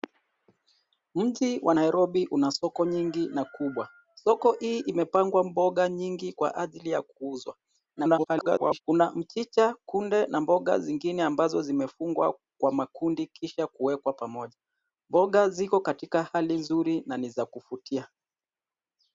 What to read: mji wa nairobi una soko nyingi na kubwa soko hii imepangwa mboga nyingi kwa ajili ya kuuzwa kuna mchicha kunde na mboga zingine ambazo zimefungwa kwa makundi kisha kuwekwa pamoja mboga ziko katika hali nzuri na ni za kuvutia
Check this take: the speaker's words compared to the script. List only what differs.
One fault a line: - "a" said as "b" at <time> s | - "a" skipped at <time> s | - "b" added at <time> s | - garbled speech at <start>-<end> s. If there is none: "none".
- garbled speech at 8.0-8.8 s